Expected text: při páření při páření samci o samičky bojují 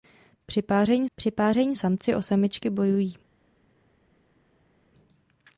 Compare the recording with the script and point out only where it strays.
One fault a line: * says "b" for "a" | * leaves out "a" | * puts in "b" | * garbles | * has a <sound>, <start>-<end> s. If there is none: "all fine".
all fine